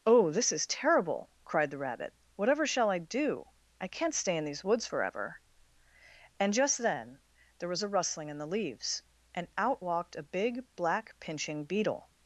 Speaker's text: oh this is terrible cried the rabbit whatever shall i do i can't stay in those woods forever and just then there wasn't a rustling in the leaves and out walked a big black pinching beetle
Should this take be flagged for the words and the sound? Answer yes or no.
yes